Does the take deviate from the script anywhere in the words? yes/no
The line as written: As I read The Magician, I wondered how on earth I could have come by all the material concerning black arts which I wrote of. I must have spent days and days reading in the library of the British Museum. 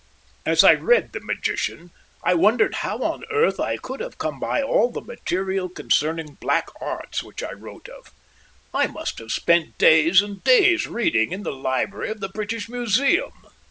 no